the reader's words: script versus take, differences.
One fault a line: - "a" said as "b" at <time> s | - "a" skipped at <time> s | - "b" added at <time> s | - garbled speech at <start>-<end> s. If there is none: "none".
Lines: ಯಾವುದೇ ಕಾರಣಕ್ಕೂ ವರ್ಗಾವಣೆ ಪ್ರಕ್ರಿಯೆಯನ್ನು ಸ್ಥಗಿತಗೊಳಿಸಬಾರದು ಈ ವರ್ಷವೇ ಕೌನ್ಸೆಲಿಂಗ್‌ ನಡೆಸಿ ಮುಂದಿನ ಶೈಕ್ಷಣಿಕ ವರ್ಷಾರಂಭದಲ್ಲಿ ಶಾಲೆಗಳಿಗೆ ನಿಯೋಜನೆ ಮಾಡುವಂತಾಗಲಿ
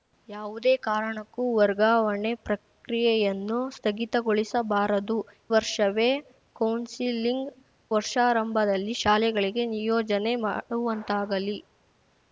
- "ಈ" skipped at 5.2 s
- "ನಡೆಸಿ ಮುಂದಿನ ಶೈಕ್ಷಣಿಕ" skipped at 7.5 s